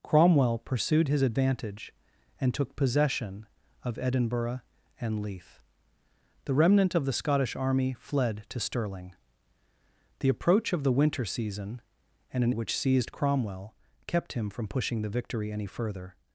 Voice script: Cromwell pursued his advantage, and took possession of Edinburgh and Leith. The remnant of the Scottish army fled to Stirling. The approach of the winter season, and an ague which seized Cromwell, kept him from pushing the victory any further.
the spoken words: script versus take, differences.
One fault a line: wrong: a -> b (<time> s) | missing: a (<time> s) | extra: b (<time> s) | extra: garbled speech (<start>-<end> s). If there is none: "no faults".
missing: ague (12.5 s)